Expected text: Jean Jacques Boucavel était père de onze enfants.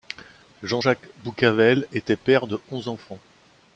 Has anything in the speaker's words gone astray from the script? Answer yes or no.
no